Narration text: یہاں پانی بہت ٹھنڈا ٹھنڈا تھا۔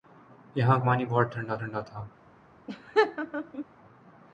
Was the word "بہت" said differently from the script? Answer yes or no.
no